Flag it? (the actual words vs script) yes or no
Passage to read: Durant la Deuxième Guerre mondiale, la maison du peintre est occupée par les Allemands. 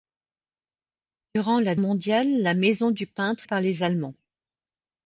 yes